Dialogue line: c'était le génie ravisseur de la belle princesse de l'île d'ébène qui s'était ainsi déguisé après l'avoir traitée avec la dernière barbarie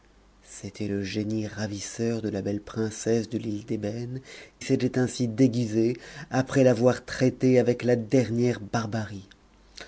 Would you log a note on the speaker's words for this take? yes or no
yes